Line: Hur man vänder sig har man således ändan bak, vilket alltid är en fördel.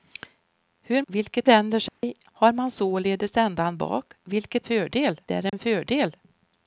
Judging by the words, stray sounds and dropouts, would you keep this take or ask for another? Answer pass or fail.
fail